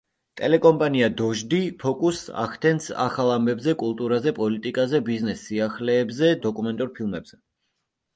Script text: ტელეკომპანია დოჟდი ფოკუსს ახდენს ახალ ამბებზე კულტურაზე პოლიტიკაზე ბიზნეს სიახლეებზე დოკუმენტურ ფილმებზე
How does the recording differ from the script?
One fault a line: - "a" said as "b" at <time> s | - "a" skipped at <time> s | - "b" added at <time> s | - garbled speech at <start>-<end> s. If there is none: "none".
none